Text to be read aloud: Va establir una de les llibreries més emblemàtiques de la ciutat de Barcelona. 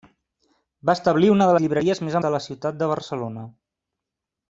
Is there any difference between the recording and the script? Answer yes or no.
yes